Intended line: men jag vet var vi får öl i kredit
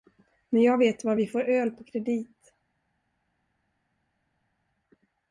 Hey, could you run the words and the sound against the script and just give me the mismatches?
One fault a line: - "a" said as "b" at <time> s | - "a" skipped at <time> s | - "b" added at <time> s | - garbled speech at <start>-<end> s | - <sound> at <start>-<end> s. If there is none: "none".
- "i" said as "på" at 1.7 s